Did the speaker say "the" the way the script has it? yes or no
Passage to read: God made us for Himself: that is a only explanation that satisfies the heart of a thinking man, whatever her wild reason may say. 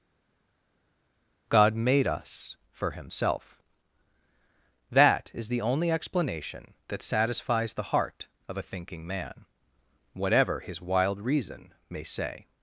yes